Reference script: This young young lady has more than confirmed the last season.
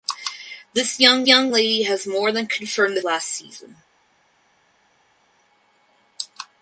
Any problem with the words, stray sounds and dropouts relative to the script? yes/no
no